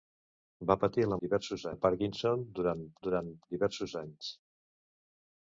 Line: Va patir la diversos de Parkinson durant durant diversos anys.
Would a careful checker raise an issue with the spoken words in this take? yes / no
no